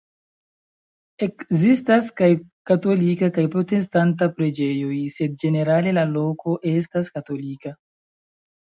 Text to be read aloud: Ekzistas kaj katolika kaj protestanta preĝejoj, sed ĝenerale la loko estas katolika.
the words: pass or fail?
pass